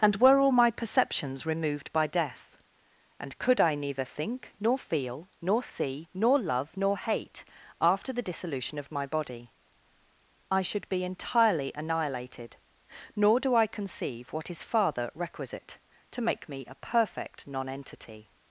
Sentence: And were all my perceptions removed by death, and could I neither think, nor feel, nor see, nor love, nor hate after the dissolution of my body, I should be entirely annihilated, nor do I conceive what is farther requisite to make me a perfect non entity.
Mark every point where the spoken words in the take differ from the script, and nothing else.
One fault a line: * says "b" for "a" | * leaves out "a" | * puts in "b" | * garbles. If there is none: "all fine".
all fine